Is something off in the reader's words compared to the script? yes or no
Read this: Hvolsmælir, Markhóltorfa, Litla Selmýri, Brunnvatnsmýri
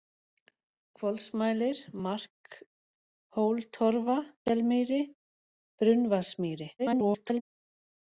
yes